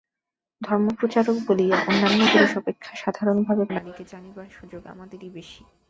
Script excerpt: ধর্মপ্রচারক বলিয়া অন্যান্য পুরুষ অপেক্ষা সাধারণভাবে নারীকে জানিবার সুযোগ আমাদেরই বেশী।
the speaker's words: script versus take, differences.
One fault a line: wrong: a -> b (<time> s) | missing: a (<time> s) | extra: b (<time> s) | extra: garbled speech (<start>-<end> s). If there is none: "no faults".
no faults